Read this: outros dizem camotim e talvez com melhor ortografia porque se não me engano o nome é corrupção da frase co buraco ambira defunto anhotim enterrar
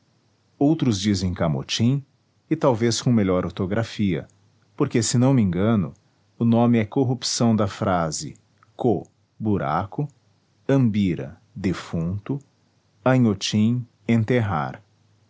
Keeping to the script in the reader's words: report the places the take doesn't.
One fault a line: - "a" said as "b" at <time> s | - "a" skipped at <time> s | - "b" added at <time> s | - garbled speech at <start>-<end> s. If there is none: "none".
none